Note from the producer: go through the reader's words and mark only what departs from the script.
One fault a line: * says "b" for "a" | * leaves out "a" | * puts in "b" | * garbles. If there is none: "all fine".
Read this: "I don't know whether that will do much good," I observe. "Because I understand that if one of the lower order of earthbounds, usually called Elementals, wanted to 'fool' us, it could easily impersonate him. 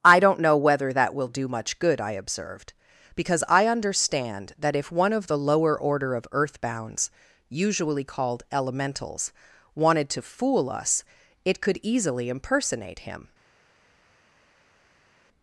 * says "observed" for "observe"